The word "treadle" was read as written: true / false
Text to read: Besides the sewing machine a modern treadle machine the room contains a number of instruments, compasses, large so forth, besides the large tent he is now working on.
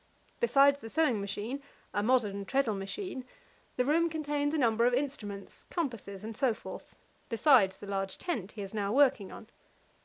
true